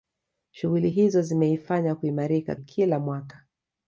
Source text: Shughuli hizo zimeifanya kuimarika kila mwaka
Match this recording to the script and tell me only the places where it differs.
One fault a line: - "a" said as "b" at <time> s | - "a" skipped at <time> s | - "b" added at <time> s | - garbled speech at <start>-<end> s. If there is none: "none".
none